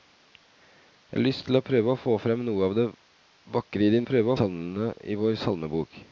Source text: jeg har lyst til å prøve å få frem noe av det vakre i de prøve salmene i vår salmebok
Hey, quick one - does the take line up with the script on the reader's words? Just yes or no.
yes